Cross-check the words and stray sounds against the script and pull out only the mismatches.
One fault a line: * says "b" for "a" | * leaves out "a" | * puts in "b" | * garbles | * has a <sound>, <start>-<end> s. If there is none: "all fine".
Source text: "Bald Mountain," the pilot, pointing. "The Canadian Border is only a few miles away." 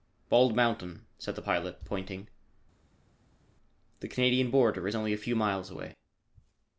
* puts in "said"